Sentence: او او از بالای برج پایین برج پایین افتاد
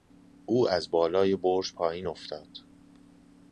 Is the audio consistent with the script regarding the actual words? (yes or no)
no